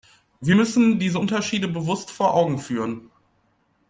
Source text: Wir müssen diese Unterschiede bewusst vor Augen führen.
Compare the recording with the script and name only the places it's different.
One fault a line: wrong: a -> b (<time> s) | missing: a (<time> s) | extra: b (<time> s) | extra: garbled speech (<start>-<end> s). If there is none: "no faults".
no faults